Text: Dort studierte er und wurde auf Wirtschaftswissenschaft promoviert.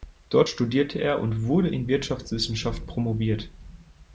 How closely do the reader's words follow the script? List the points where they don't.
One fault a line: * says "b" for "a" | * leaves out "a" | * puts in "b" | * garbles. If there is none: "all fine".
* says "in" for "auf"